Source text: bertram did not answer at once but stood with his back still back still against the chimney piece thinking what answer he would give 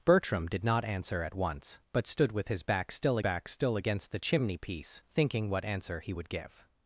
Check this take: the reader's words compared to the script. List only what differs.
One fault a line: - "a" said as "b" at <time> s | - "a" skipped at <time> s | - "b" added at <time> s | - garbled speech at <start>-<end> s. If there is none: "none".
none